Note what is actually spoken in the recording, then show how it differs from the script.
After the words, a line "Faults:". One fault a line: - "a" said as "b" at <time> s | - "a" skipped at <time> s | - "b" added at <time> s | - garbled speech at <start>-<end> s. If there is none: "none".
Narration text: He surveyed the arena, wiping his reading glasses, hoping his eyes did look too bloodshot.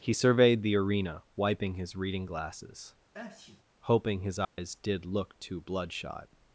He surveyed the arena, wiping his reading glasses, hoping his eyes did look too bloodshot.
Faults:
none